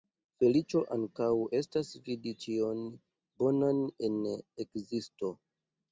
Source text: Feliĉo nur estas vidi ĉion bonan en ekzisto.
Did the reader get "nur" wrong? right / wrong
wrong